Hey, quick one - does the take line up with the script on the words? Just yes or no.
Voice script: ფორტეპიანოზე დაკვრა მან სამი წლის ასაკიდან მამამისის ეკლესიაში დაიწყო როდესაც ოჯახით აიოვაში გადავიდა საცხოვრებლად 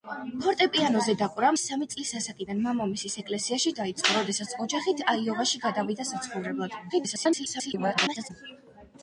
no